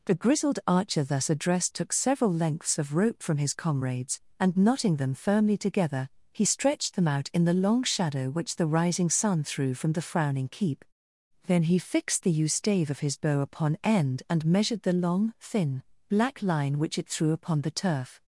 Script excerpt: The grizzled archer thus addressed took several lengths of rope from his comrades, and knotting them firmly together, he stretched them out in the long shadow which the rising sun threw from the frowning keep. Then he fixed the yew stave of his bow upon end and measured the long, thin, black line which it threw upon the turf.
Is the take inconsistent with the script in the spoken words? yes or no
no